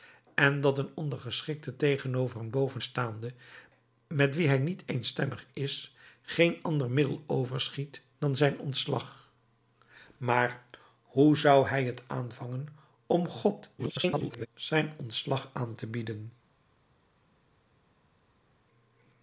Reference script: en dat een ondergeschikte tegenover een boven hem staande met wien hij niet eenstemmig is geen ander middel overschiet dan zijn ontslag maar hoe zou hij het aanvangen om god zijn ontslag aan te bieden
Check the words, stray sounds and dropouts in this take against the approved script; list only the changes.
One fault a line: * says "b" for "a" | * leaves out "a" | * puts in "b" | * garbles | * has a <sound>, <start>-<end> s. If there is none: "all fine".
* leaves out "hem"
* garbles